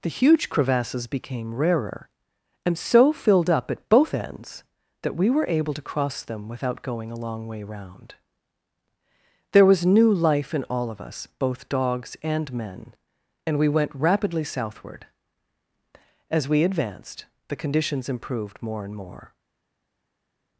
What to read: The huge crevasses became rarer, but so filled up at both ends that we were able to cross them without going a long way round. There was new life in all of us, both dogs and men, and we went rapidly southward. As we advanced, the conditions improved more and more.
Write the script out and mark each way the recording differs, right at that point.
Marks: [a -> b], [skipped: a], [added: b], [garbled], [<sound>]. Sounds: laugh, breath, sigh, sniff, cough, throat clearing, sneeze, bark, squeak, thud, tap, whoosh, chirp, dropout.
The huge crevasses became rarer, [but -> and] so filled up at both ends that we were able to cross them without going a long way round. There was new life in all of us, both dogs and men, and we went rapidly southward. As we advanced, the conditions improved more and more.